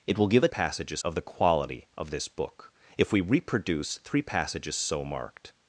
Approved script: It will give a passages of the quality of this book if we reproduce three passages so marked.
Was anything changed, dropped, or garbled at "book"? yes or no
no